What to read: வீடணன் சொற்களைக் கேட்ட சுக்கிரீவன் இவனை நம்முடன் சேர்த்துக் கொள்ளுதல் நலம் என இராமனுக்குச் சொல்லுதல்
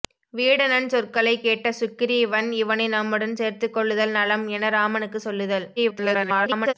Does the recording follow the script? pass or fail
fail